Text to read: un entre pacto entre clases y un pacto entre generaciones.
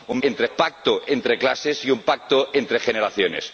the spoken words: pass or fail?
pass